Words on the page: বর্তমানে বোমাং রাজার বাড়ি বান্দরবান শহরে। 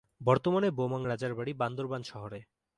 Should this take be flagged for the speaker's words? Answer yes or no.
no